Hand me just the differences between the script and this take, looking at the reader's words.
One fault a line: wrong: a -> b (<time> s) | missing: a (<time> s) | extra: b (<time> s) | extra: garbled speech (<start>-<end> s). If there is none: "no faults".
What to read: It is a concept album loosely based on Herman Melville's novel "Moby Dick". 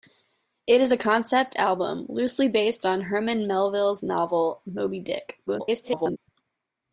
extra: garbled speech (5.5-6.2 s)